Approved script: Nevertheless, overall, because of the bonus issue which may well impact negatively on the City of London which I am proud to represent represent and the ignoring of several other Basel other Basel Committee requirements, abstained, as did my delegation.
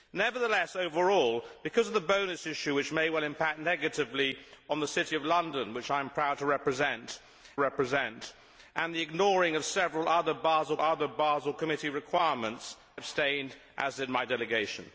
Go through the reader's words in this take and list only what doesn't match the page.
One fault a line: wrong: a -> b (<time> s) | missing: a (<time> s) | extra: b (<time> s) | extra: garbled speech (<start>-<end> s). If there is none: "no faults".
no faults